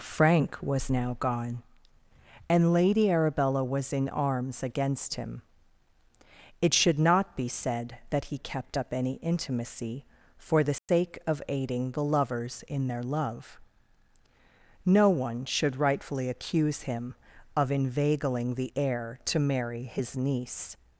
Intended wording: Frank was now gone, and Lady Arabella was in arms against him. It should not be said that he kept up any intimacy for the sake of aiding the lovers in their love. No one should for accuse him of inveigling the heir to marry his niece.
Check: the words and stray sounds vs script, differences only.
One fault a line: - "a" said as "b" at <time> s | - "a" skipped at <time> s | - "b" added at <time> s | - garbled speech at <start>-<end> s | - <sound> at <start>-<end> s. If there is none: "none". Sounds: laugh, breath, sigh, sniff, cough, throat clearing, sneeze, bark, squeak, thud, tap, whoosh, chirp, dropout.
- dropout at 10.8-10.9 s
- "for" said as "rightfully" at 15.8 s